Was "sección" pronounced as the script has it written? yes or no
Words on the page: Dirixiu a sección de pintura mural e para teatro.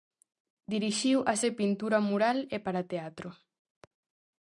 no